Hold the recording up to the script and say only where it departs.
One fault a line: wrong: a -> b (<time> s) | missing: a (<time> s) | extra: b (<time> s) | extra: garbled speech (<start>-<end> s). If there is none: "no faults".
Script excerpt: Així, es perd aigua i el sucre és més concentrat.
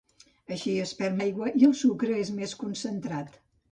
no faults